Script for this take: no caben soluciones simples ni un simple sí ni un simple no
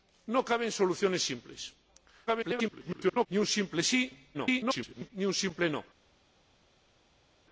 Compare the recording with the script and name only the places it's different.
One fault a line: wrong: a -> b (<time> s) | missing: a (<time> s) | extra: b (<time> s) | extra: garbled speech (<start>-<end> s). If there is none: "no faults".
extra: garbled speech (2.3-3.3 s)
extra: garbled speech (4.3-5.1 s)